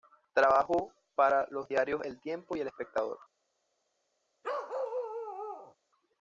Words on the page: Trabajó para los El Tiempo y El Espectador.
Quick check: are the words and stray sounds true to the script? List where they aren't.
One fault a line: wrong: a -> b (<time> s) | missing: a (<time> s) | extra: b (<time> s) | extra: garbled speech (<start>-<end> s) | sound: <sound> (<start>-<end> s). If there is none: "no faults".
extra: diarios (1.7 s)
sound: bark (4.4-5.8 s)